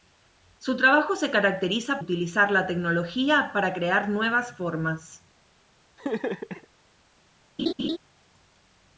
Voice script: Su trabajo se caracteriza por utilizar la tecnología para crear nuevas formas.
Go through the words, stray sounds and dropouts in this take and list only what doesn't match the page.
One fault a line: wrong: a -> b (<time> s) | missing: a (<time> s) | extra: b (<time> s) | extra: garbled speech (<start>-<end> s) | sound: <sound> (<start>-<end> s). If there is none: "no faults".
missing: por (2.0 s)
sound: laugh (6.0-6.7 s)
sound: laugh (7.6-8.0 s)